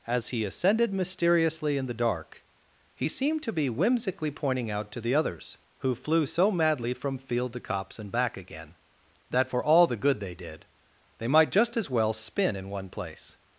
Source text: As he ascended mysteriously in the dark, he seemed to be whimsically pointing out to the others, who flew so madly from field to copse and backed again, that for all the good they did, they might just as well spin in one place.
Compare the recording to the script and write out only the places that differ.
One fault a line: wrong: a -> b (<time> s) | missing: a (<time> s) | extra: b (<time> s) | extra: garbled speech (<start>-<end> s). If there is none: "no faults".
wrong: backed -> back (8.1 s)